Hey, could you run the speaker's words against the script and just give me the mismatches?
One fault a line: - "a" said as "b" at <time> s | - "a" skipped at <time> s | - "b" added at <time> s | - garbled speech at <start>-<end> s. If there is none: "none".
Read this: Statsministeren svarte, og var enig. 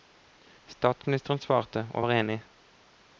none